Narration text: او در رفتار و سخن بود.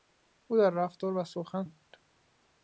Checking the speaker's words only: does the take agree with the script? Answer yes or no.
yes